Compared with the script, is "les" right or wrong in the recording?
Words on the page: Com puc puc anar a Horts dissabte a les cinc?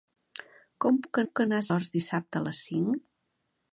right